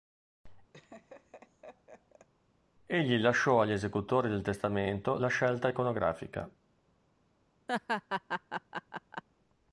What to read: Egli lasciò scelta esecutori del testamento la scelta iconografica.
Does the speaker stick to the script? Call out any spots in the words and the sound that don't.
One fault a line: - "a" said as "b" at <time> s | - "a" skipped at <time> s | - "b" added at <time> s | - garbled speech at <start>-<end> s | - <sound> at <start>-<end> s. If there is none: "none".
- laugh at 0.7-2.3 s
- "scelta" said as "agli" at 3.6 s
- laugh at 7.7-9.2 s